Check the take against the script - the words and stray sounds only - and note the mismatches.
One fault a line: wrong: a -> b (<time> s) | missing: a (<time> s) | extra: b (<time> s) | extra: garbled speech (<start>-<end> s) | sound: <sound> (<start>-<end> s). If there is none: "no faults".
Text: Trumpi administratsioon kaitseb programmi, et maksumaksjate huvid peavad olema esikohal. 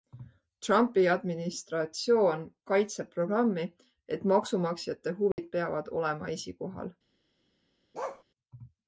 sound: dropout (5.3-5.4 s)
sound: bark (7.9-8.2 s)